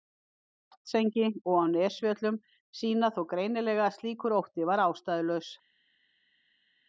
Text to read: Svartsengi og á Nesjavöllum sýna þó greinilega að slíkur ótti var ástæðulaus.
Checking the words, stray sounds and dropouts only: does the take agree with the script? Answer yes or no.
yes